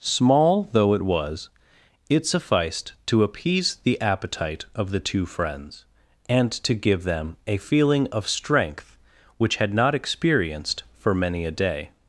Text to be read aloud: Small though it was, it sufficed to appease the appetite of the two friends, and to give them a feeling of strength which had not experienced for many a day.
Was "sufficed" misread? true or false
false